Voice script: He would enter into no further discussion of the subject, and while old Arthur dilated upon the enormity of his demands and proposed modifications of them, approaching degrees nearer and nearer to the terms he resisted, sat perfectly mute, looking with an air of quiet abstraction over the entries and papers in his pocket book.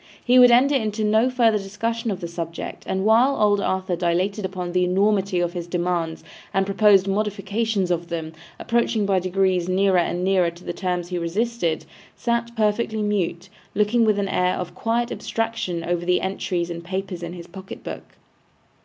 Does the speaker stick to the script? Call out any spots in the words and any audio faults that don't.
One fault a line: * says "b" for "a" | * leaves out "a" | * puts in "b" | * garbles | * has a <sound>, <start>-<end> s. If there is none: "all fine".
* puts in "by"